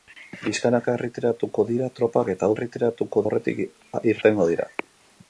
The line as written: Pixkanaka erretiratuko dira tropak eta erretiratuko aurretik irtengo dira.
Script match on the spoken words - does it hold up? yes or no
yes